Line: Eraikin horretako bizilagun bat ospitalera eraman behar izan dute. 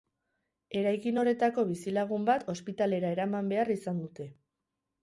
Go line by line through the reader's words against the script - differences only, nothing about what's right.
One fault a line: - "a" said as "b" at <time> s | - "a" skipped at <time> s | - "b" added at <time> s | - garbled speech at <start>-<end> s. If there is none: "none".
none